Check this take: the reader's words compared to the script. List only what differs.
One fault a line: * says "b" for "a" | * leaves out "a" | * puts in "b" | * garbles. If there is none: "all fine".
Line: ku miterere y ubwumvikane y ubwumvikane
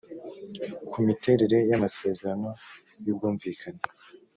* says "amasezerano" for "ubwumvikane"